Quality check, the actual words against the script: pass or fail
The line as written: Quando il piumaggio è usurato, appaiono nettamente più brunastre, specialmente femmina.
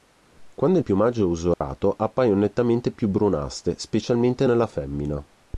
fail